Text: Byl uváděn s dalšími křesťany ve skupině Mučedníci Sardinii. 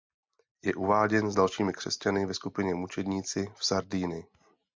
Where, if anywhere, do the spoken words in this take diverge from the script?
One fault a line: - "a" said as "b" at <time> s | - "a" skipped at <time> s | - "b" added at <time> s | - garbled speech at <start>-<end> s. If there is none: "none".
- "Byl" said as "Je" at 0.6 s
- "v" added at 3.6 s